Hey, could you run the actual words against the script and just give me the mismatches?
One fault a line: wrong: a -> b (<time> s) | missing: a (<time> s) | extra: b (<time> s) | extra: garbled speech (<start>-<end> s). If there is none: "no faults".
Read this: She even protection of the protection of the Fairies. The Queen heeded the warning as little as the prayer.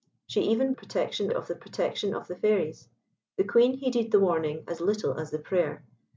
no faults